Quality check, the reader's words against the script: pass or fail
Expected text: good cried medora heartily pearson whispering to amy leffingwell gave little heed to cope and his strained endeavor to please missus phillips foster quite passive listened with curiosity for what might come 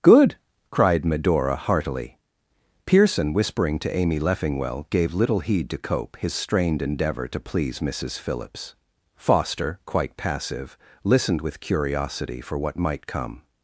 fail